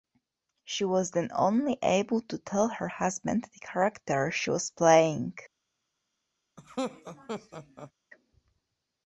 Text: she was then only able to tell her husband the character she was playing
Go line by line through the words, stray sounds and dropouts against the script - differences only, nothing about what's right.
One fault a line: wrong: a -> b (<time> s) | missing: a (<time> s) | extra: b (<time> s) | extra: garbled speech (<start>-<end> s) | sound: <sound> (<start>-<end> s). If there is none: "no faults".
sound: laugh (6.6-7.9 s)